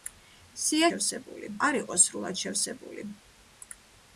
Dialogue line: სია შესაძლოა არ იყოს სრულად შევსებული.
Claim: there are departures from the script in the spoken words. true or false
true